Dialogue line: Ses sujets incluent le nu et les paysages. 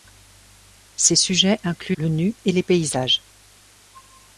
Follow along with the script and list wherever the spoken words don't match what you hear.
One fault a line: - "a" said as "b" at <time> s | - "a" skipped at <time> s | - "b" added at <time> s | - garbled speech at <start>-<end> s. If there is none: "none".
none